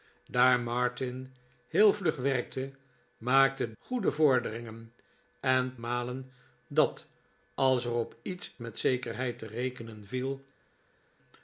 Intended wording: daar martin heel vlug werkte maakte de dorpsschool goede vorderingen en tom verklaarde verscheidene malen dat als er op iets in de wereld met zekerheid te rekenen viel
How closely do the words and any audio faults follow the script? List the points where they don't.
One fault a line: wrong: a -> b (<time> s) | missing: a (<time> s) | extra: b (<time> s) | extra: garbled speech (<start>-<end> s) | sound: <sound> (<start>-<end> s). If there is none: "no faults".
missing: de dorpsschool (3.7 s)
missing: tom verklaarde verscheidene (5.8 s)
missing: in de wereld (8.5 s)